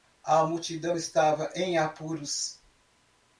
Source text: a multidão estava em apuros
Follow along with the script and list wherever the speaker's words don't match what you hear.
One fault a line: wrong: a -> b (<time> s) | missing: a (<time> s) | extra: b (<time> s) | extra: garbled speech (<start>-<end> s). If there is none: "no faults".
no faults